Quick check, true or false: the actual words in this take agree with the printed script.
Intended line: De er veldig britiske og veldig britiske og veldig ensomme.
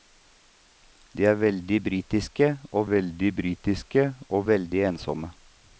true